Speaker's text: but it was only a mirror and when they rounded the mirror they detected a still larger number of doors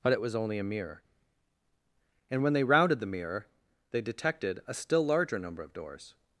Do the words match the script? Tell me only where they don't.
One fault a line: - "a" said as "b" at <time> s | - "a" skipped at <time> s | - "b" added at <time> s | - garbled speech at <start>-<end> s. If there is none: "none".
none